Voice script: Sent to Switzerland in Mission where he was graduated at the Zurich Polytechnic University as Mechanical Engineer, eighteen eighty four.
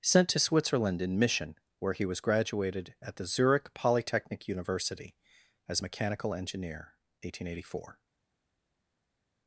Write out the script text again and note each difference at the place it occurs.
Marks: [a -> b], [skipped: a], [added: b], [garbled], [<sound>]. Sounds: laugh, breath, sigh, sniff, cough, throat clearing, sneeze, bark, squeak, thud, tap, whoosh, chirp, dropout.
Sent to Switzerland in Mission where he was graduated at the Zurich Polytechnic University as Mechanical Engineer, eighteen eighty four.